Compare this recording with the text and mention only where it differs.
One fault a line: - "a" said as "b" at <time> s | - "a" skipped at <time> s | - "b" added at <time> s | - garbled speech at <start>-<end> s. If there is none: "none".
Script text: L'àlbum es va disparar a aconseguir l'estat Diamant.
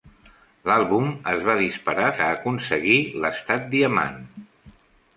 none